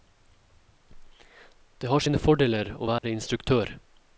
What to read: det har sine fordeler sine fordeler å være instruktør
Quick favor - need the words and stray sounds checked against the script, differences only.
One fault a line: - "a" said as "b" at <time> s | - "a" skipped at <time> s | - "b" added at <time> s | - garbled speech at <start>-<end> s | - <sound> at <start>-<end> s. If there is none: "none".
- "sine fordeler" skipped at 2.7 s
- dropout at 3.0-3.0 s